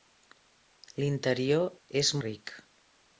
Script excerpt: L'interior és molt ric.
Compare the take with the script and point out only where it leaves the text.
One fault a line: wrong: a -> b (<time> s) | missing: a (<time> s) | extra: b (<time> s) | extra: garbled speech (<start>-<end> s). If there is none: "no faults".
missing: molt (2.1 s)